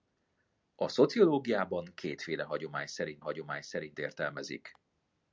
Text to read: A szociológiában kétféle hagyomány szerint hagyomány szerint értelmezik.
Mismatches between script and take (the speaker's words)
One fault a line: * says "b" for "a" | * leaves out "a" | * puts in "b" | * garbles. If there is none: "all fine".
all fine